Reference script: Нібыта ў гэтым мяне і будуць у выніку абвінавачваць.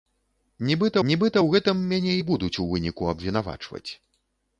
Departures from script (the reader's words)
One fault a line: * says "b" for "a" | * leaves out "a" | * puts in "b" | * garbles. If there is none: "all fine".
* puts in "нібыта"